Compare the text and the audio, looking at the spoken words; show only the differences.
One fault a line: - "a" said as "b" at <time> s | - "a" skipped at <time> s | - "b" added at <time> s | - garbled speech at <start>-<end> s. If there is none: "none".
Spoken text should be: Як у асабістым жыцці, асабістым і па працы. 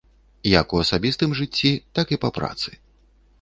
- "асабістым" said as "так" at 2.0 s